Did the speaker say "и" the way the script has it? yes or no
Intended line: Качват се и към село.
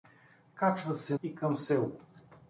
yes